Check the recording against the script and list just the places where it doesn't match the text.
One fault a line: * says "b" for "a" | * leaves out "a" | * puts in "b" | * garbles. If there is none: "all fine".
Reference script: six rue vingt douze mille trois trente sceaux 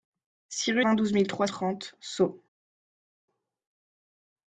all fine